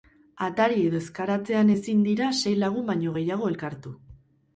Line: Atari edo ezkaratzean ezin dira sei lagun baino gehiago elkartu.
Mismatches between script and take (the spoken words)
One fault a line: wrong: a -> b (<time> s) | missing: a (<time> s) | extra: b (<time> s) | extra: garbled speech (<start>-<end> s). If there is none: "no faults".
no faults